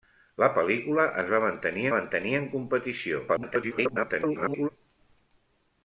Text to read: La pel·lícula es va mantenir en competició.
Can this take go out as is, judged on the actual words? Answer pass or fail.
fail